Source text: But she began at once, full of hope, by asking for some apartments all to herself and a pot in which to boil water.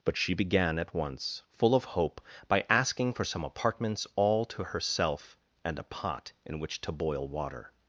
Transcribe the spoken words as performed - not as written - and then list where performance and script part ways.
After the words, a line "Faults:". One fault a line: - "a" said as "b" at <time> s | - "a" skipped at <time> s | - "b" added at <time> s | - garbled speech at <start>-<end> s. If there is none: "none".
But she began at once, full of hope, by asking for some apartments all to herself and a pot in which to boil water.
Faults:
none